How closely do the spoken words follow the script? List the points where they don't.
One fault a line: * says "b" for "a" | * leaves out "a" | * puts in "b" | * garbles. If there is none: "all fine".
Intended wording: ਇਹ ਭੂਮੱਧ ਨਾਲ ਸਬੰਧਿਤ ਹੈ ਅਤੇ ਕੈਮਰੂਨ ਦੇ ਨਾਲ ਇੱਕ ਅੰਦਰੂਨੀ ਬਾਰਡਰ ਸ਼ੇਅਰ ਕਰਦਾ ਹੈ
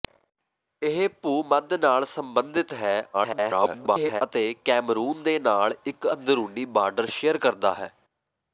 * garbles